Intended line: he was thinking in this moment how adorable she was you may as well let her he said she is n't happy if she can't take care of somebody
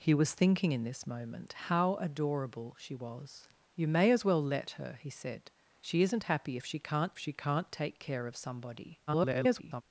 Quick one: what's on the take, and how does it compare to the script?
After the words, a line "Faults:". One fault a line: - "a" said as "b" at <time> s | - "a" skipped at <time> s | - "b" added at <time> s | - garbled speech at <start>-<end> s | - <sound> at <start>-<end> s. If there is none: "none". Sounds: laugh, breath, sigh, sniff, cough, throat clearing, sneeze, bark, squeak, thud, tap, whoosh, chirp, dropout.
he was thinking in this moment how adorable she was you may as well let her he said she is n't happy if she can't she can't take care of somebody [garbled]
Faults:
- "she can't" added at 7.2 s
- garbled speech at 9.1-9.8 s